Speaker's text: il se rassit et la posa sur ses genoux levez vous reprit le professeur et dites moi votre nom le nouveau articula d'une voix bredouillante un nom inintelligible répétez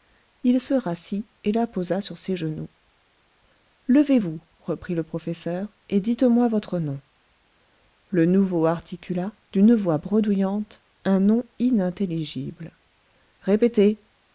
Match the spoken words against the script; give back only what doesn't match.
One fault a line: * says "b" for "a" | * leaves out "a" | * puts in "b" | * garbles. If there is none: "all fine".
all fine